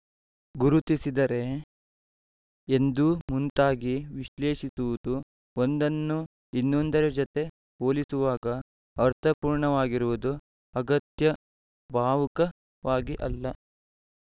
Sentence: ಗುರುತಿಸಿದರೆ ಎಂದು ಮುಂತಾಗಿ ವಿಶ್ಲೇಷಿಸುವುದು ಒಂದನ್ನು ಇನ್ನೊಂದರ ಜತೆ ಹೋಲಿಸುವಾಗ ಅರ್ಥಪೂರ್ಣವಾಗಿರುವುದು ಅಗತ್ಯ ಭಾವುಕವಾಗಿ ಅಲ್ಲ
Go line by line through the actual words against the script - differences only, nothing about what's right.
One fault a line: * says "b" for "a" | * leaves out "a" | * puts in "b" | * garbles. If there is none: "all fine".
all fine